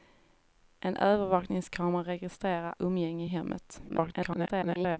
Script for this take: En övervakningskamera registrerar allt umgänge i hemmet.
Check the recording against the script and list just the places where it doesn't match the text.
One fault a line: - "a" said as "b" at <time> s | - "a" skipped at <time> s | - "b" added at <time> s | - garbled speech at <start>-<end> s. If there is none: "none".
- "allt" skipped at 2.8 s
- garbled speech at 3.9-5.0 s